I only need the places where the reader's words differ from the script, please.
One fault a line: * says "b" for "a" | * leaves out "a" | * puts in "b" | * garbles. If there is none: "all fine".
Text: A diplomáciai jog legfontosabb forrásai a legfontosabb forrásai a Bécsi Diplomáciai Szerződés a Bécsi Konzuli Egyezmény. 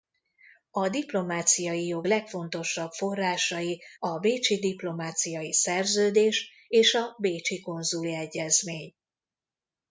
* leaves out "legfontosabb forrásai a"
* puts in "és"